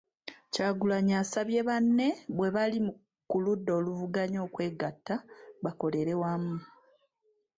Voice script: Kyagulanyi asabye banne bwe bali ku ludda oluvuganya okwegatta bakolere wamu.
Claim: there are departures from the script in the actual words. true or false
false